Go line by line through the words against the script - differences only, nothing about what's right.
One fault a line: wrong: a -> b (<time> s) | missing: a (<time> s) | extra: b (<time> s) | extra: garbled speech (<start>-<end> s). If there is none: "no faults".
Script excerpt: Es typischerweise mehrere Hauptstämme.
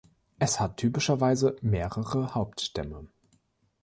extra: hat (0.6 s)